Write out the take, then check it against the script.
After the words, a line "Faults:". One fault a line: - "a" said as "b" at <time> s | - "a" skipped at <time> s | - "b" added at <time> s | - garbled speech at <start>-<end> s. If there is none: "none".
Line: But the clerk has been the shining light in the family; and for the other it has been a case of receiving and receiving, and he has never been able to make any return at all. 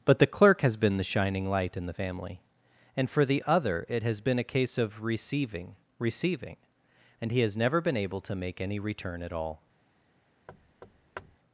But the clerk has been the shining light in the family; and for the other it has been a case of receiving receiving, and he has never been able to make any return at all.
Faults:
- "and" skipped at 5.7 s